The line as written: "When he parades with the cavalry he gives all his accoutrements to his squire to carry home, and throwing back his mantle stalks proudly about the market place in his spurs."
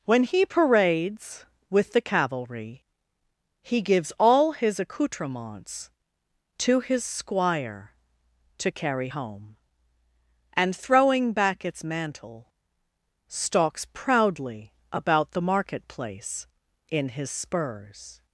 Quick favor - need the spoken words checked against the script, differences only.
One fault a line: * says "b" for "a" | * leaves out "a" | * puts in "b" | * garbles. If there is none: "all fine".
* says "its" for "his"